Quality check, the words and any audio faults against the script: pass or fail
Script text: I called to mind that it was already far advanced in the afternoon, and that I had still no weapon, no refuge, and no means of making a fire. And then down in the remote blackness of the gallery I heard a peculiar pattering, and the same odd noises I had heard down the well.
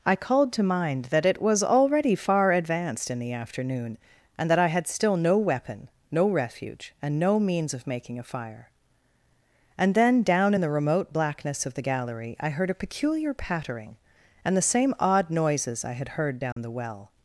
fail